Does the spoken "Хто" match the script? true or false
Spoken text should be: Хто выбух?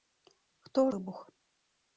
true